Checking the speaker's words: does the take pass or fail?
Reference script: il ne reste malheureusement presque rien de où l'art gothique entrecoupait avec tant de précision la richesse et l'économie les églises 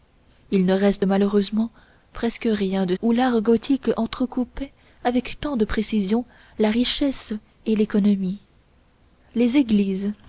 pass